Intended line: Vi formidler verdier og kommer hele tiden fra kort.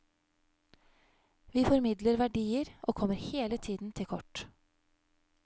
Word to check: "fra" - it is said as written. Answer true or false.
false